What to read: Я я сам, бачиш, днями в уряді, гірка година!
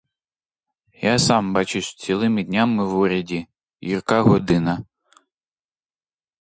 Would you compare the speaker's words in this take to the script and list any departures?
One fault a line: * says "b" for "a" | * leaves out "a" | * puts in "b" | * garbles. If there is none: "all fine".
* leaves out "я"
* puts in "цілими"